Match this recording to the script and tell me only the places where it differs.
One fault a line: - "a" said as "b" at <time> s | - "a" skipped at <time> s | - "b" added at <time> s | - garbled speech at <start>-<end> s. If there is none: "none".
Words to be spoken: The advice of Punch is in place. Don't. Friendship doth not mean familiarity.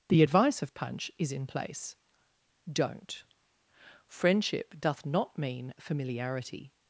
none